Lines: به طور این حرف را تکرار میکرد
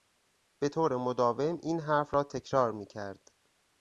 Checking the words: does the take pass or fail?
fail